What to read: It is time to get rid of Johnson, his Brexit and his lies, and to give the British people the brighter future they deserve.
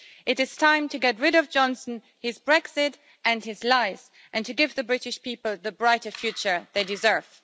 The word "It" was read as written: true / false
true